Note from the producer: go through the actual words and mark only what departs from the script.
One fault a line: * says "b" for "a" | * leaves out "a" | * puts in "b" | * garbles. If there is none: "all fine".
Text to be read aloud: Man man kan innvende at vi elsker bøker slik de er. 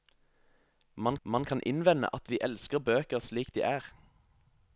all fine